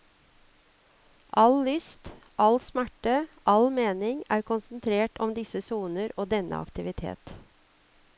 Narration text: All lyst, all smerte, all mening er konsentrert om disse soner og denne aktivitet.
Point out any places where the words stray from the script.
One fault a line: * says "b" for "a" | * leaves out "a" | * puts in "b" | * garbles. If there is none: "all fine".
all fine